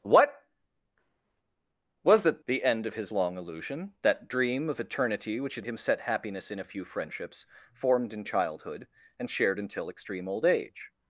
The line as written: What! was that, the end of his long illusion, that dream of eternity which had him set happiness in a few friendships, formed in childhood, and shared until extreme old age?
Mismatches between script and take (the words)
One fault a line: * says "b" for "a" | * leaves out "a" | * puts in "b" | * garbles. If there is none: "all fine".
all fine